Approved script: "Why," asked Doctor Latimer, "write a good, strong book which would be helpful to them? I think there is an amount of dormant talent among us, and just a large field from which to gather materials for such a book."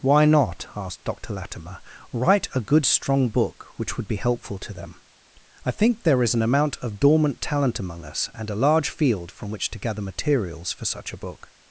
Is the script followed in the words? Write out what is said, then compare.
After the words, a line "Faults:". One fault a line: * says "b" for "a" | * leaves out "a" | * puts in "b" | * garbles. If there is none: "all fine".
"Why not," asked Doctor Latimer, "write a good, strong book which would be helpful to them? I think there is an amount of dormant talent among us, and a large field from which to gather materials for such a book."
Faults:
* puts in "not"
* leaves out "just"